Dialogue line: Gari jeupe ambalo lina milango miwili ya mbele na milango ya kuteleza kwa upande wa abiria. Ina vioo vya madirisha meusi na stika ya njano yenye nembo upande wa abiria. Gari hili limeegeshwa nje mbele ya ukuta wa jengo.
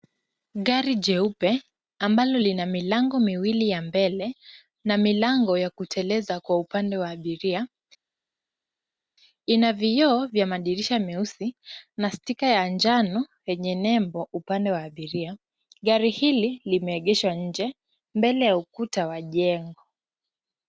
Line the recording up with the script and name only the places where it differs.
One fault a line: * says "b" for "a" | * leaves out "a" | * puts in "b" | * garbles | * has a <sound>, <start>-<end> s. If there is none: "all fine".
all fine